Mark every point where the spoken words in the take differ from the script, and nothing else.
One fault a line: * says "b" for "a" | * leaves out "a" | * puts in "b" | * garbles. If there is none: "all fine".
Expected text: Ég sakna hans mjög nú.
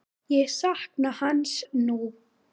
* leaves out "mjög"